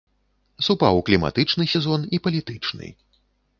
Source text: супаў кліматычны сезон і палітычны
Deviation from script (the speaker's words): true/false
false